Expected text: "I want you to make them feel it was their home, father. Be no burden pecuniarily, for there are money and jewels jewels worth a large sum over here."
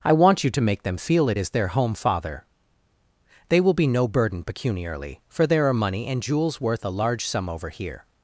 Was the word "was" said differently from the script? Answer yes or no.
yes